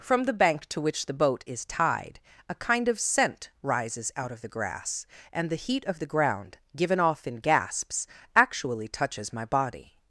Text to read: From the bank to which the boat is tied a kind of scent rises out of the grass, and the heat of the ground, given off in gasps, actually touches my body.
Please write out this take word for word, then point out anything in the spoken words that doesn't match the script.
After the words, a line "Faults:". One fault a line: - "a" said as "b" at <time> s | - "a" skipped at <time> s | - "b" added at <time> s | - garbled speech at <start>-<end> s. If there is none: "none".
From the bank to which the boat is tied a kind of scent rises out of the grass, and the heat of the ground, given off in gasps, actually touches my body.
Faults:
none